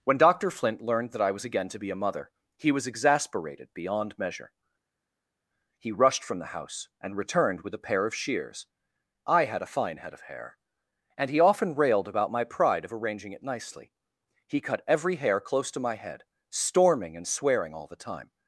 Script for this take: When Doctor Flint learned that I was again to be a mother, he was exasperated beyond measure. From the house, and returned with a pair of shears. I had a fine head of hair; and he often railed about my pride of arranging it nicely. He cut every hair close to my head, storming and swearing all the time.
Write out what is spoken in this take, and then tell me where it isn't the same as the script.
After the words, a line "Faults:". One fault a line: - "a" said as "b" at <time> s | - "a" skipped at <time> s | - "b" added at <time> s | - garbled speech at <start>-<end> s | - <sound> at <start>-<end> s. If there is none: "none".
When Doctor Flint learned that I was again to be a mother, he was exasperated beyond measure. He rushed from the house, and returned with a pair of shears. I had a fine head of hair; and he often railed about my pride of arranging it nicely. He cut every hair close to my head, storming and swearing all the time.
Faults:
- "He rushed" added at 5.8 s